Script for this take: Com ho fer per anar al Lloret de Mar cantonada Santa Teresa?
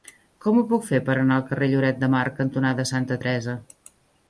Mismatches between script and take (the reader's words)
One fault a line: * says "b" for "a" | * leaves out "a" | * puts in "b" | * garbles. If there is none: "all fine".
* puts in "puc"
* puts in "carrer"